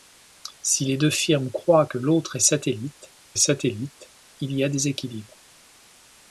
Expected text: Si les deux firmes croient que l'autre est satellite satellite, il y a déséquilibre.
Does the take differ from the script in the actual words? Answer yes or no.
no